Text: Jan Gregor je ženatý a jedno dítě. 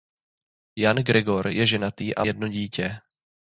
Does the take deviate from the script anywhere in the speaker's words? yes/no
no